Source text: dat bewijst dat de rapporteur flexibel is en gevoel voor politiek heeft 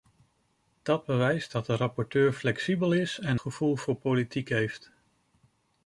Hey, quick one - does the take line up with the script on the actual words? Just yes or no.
yes